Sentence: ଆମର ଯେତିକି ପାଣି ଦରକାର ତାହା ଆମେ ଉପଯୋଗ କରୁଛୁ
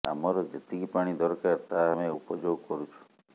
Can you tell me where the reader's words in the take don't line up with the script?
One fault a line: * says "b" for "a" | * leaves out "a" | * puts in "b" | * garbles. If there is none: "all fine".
all fine